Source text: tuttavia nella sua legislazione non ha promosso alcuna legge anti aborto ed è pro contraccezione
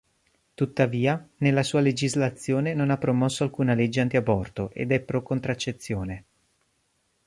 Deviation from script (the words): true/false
false